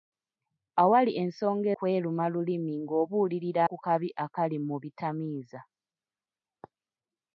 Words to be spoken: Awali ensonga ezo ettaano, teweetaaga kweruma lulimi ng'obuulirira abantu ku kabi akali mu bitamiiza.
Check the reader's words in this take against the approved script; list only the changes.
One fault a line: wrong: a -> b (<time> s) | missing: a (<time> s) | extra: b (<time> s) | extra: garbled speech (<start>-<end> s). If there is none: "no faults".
missing: ezo ettaano teweetaaga (1.7 s)
missing: abantu (3.6 s)